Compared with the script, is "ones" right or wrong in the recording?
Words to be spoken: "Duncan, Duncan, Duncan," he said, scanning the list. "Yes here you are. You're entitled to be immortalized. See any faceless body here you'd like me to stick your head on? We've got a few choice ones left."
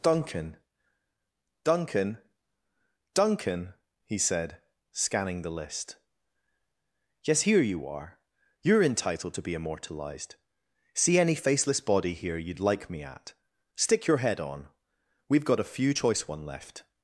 wrong